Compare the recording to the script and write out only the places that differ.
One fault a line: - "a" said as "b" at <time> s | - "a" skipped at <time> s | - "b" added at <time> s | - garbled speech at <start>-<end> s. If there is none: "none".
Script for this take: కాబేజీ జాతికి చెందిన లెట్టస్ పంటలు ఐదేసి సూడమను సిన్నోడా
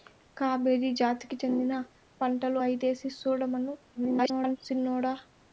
- "లెట్టస్" skipped at 1.7 s
- garbled speech at 3.9-4.6 s